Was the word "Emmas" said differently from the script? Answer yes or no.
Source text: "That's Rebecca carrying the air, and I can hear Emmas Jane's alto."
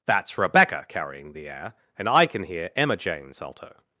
yes